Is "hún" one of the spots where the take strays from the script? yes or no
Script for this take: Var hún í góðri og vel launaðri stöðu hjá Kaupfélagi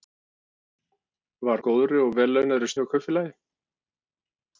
yes